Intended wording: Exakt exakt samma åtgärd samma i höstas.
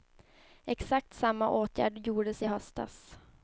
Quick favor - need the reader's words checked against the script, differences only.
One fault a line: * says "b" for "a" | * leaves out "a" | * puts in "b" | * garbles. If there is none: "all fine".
* leaves out "exakt"
* says "gjordes" for "samma"